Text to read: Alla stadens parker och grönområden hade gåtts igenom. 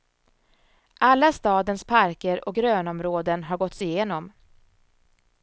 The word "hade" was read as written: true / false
false